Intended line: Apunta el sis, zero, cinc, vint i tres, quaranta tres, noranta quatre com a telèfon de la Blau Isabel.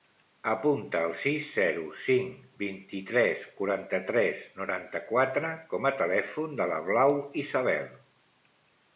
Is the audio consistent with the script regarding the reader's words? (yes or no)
yes